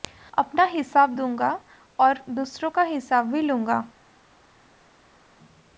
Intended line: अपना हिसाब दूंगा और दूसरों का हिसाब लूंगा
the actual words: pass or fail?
fail